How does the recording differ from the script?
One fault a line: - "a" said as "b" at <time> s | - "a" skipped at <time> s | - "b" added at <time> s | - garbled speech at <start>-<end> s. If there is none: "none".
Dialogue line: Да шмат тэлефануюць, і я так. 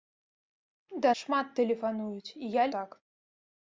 none